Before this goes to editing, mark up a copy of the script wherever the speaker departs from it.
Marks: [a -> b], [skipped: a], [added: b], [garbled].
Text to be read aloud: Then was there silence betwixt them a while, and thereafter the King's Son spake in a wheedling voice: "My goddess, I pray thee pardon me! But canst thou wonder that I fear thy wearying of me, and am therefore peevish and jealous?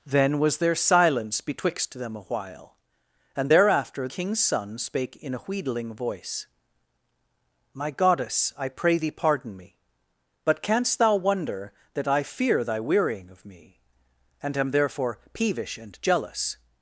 Then was there silence betwixt them a while, and thereafter [skipped: the] King's Son spake in a wheedling voice: "My goddess, I pray thee pardon me! But canst thou wonder that I fear thy wearying of me, and am therefore peevish and jealous?